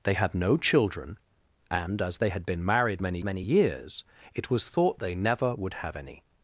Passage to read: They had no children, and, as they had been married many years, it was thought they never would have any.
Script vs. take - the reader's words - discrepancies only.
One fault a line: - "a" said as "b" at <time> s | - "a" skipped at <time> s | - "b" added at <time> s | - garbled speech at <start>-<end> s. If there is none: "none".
- "many" added at 3.2 s